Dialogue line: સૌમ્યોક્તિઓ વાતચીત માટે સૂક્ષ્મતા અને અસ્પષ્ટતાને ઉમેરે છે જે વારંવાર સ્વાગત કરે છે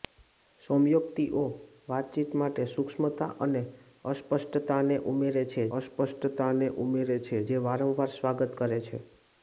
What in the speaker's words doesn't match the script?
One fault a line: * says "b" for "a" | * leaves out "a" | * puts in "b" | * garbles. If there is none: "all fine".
* puts in "અસ્પષ્ટતાને ઉમેરે છે"